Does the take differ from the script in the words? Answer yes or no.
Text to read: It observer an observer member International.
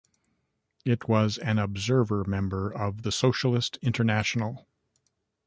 yes